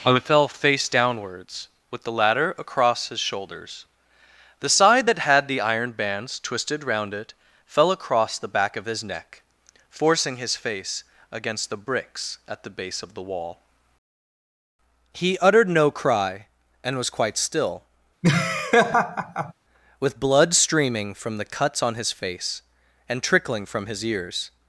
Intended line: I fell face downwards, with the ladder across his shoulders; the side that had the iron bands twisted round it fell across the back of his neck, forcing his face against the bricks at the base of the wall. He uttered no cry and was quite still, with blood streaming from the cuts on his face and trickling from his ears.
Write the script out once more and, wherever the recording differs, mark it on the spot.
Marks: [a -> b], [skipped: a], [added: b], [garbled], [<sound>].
I fell face downwards, with the ladder across his shoulders; the side that had the iron bands twisted round it fell across the back of his neck, forcing his face against the bricks at the base of the wall. He uttered no cry and was quite still, [laugh] with blood streaming from the cuts on his face and trickling from his ears.